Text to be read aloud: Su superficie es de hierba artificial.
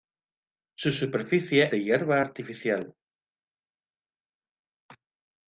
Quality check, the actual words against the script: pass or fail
fail